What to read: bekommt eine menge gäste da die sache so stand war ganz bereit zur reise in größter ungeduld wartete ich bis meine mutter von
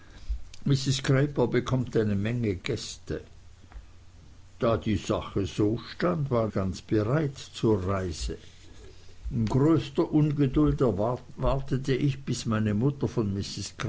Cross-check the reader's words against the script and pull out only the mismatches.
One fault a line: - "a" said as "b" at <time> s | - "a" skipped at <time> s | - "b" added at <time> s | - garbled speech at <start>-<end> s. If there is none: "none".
none